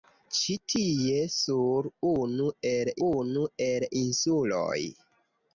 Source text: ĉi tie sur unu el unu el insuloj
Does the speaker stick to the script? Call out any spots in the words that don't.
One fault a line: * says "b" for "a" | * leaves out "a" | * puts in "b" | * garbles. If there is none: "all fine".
all fine